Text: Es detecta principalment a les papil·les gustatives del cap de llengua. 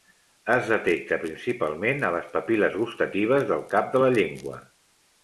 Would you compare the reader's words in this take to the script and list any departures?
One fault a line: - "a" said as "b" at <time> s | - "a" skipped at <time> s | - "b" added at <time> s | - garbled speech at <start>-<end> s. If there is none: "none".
- "la" added at 4.0 s